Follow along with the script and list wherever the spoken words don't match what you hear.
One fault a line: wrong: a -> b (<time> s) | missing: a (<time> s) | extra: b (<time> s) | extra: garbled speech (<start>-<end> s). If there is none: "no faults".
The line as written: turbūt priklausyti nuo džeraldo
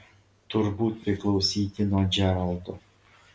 no faults